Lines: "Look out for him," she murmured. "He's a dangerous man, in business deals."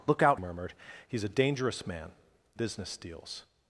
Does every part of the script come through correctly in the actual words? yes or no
no